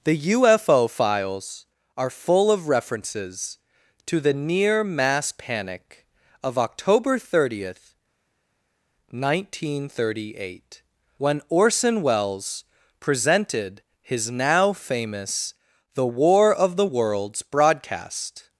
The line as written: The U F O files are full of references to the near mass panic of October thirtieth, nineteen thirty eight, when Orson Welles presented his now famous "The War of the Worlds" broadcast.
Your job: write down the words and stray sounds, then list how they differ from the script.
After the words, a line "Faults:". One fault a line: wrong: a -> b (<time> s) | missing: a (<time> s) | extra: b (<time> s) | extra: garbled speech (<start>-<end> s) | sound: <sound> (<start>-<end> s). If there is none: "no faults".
The U F O files are full of references to the near mass panic of October thirtieth, nineteen thirty eight, when Orson Welles presented his now famous "The War of the Worlds" broadcast.
Faults:
no faults